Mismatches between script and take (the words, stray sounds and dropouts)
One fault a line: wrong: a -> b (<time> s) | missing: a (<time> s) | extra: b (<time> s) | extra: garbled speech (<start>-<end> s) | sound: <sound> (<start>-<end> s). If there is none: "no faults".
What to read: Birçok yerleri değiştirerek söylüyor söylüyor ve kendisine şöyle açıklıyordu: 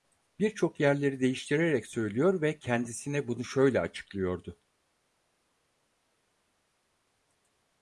missing: söylüyor (2.4 s)
extra: bunu (3.3 s)